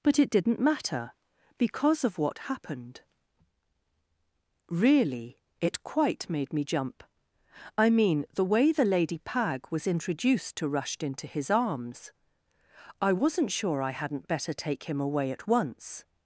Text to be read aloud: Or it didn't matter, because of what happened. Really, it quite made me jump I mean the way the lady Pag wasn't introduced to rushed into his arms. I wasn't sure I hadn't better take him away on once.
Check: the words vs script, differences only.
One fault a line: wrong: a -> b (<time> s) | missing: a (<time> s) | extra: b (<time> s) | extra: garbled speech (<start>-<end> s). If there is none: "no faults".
wrong: Or -> But (0.0 s)
wrong: wasn't -> was (9.7 s)
wrong: on -> at (15.3 s)